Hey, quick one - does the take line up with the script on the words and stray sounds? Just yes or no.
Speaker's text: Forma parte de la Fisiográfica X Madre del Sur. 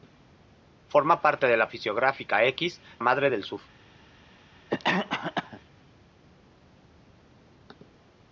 no